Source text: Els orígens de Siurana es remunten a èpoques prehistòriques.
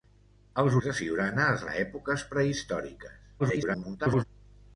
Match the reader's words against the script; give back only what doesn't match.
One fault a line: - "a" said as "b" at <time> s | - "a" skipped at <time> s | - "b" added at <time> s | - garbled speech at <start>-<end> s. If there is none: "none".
- "orígens" skipped at 0.8 s
- "remunten" skipped at 1.6 s
- garbled speech at 3.4-4.2 s